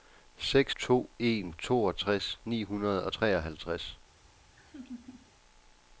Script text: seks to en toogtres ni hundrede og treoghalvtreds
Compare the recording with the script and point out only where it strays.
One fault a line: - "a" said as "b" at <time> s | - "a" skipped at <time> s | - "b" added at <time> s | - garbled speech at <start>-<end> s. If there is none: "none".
none